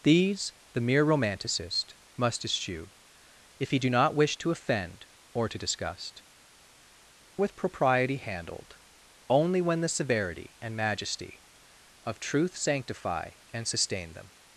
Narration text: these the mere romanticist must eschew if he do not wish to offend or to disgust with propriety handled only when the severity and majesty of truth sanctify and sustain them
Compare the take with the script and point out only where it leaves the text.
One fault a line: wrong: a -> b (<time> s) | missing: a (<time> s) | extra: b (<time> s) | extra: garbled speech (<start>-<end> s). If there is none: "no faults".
no faults